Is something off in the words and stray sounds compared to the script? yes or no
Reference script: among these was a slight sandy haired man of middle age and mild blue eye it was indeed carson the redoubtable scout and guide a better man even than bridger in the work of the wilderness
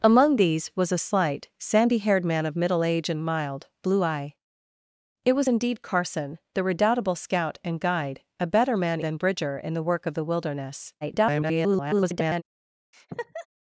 yes